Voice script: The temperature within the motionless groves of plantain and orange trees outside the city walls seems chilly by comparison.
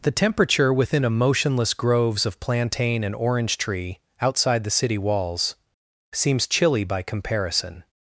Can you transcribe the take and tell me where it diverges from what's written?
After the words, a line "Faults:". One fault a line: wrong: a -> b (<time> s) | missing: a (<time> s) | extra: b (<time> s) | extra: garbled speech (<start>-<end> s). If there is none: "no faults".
The temperature within a motionless groves of plantain and orange tree outside the city walls seems chilly by comparison.
Faults:
wrong: the -> a (1.1 s)
wrong: trees -> tree (3.6 s)